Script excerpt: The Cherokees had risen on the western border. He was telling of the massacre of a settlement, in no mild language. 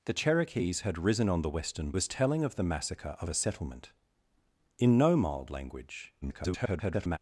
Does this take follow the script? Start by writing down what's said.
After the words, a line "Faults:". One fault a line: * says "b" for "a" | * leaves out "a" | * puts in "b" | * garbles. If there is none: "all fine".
The Cherokees had risen on the western was telling of the massacre of a settlement, in no mild language. [garbled]
Faults:
* leaves out "border He"
* garbles